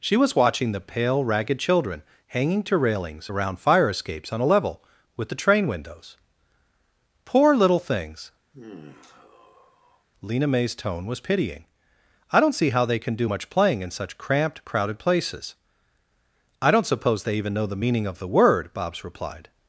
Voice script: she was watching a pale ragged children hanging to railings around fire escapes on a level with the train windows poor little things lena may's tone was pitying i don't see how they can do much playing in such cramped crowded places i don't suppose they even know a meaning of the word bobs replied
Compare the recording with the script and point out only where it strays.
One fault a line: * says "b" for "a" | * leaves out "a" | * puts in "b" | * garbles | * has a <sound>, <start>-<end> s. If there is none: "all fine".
* says "the" for "a"
* has a sigh, 8.5-10.1 s
* says "the" for "a"